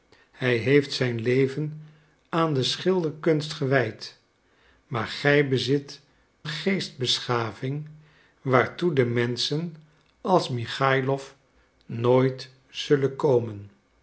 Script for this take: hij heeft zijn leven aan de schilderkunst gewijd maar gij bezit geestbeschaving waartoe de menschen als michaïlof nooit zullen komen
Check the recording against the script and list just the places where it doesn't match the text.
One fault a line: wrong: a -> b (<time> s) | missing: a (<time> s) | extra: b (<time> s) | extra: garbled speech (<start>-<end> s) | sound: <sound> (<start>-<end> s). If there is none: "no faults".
no faults